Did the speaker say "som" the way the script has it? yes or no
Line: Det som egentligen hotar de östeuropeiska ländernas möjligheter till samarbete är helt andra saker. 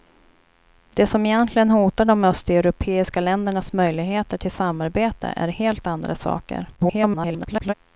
yes